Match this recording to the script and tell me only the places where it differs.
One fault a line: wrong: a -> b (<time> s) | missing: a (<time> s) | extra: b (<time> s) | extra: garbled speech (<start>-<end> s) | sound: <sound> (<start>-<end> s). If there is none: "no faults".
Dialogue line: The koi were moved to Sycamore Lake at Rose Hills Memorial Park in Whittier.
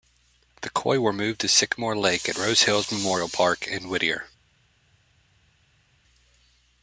no faults